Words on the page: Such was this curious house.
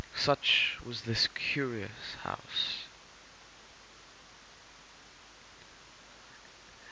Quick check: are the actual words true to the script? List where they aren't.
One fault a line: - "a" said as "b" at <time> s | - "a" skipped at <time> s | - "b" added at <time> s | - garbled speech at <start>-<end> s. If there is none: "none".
none